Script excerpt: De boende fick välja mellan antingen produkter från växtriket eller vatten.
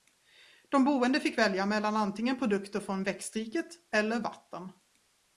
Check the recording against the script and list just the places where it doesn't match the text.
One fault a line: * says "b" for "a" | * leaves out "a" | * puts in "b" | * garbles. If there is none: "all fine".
all fine